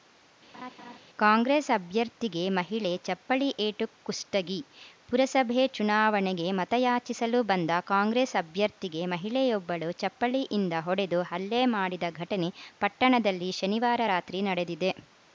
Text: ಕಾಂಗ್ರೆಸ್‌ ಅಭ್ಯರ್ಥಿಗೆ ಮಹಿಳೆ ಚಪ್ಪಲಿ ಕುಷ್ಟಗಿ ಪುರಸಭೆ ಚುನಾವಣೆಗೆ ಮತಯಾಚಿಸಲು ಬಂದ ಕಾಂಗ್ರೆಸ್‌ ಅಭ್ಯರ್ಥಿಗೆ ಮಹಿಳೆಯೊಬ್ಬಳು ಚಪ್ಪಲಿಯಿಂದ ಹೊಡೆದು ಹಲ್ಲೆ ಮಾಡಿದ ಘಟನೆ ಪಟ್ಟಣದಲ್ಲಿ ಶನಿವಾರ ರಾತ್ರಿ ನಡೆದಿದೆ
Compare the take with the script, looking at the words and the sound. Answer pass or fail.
fail